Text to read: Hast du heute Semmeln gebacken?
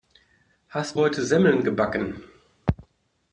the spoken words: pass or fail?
fail